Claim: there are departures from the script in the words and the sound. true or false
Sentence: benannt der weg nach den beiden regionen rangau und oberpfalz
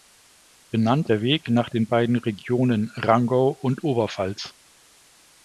false